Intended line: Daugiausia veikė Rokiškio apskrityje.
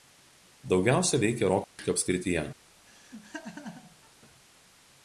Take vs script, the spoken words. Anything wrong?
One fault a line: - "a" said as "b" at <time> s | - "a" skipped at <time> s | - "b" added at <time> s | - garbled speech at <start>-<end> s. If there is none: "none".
none